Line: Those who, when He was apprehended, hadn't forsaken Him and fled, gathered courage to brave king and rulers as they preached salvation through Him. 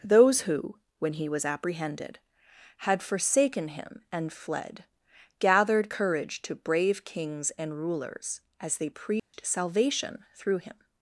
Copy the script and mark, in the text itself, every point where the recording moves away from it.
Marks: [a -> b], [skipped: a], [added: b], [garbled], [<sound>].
Those who, when He was apprehended, [hadn't -> had] forsaken Him and fled, gathered courage to brave [king -> kings] and rulers as they preached [dropout] salvation through Him.